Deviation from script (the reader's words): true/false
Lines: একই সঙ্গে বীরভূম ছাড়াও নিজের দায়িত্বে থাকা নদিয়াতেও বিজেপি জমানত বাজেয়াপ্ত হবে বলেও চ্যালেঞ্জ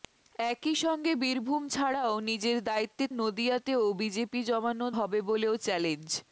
true